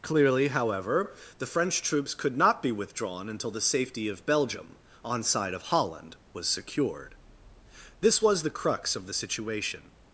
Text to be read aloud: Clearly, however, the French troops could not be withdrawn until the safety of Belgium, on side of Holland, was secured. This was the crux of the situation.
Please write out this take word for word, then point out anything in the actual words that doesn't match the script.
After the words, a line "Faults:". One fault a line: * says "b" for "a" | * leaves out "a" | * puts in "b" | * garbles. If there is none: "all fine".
Clearly, however, the French troops could not be withdrawn until the safety of Belgium, on side of Holland, was secured. This was the crux of the situation.
Faults:
all fine